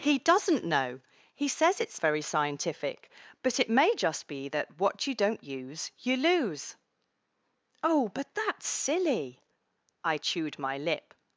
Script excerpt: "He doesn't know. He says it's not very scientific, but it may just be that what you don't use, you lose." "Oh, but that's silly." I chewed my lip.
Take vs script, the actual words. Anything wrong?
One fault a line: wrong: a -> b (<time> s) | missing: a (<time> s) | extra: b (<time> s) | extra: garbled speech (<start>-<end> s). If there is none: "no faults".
missing: not (2.0 s)